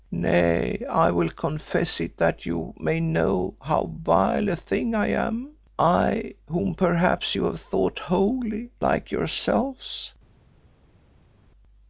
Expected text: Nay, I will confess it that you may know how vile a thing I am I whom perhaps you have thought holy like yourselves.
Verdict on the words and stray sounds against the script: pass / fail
pass